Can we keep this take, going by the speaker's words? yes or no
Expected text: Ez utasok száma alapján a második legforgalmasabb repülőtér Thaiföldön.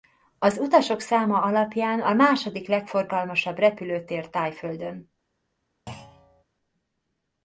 no